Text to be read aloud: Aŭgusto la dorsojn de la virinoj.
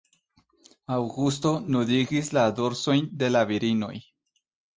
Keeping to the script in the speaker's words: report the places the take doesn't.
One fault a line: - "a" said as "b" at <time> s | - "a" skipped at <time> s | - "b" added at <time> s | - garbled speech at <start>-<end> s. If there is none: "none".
- "nudigis" added at 1.8 s